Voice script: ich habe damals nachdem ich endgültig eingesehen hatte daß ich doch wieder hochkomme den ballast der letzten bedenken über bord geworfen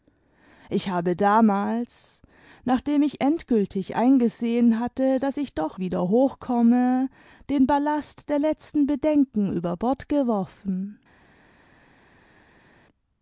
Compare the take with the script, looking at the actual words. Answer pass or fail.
pass